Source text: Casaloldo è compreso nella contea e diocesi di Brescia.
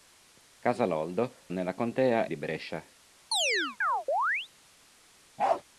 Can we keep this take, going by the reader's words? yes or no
no